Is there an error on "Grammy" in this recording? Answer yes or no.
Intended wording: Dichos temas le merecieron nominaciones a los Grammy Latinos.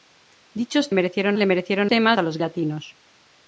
yes